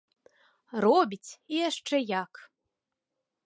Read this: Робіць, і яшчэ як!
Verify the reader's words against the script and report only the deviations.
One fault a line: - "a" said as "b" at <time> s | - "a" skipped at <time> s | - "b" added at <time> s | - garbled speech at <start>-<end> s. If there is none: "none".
none